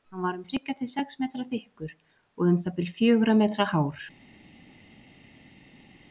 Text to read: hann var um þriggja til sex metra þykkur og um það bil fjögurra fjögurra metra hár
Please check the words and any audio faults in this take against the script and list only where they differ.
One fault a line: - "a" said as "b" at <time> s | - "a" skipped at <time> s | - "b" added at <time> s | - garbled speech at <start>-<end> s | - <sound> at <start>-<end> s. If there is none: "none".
- "fjögurra" skipped at 3.4 s